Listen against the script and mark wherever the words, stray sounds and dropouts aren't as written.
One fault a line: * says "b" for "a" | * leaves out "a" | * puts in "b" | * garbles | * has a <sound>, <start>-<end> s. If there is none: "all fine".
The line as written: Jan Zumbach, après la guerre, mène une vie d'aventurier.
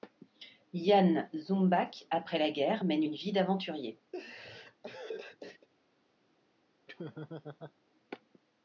* has a laugh, 4.1-5.7 s
* has a laugh, 6.9-7.7 s